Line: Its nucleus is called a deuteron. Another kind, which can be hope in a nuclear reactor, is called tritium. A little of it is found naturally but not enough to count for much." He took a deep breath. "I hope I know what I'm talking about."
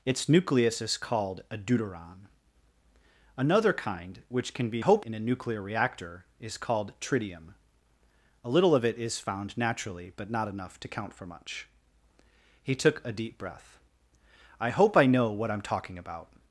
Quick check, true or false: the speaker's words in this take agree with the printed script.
true